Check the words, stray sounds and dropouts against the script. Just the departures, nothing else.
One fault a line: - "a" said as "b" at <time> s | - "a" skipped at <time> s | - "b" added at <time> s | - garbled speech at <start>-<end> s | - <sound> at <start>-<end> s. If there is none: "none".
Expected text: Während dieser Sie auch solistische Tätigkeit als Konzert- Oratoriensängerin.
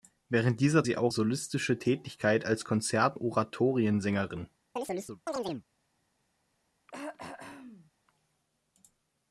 - chirp at 4.8-5.7 s
- throat clearing at 6.9-7.9 s